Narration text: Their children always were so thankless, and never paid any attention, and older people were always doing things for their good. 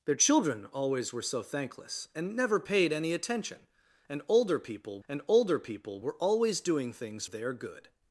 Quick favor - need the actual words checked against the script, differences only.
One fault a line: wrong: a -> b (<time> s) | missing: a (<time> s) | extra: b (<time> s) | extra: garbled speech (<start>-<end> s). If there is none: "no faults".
extra: and older people (5.1 s)
missing: for (7.2 s)